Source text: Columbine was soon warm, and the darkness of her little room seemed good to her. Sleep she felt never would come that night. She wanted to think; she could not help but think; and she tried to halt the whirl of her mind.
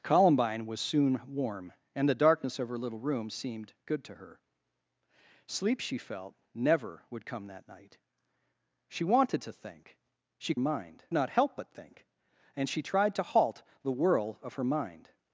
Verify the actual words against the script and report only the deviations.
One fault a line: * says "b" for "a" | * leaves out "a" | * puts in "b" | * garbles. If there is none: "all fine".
* says "mind" for "could"